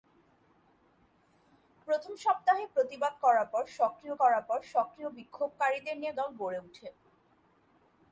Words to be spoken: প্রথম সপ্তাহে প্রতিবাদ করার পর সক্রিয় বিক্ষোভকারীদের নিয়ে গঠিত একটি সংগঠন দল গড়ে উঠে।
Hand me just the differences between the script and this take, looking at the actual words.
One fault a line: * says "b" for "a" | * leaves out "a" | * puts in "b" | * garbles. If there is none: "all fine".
* says "করার পর সক্রিয় বিক্ষোভকারীদের নিয়ে" for "বিক্ষোভকারীদের নিয়ে গঠিত একটি সংগঠন"